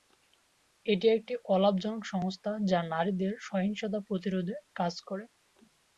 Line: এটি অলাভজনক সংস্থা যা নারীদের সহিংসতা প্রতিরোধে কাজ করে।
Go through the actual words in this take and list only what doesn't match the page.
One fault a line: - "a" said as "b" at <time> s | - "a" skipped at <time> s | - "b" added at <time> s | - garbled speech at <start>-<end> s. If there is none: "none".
- "একটি" added at 1.1 s